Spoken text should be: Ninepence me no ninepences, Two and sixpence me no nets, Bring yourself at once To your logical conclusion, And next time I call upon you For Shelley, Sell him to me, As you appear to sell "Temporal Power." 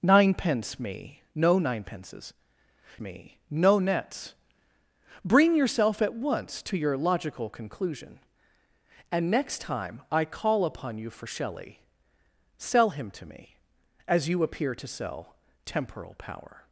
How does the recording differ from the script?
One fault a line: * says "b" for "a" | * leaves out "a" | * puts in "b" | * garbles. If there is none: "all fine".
* leaves out "Two and sixpence"